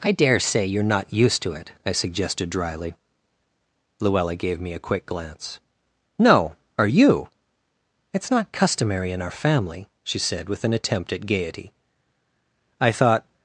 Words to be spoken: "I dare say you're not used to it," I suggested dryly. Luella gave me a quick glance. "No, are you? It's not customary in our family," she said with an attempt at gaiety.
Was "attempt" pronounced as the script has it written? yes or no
yes